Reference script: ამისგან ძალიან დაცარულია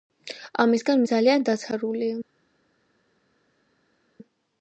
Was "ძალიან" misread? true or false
false